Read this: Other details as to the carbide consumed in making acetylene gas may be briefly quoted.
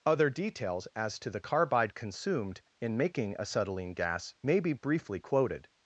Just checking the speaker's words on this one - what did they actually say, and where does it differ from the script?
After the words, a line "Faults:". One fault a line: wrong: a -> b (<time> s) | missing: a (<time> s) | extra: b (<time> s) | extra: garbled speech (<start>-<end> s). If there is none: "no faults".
Other details as to the carbide consumed in making acetylene gas may be briefly quoted.
Faults:
no faults